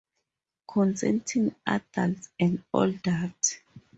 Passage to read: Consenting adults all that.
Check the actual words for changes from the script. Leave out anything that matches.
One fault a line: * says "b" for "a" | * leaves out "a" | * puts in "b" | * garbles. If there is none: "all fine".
* puts in "and"